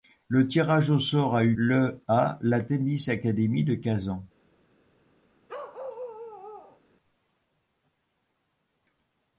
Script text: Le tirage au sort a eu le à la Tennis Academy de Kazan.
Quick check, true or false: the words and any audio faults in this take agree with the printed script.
false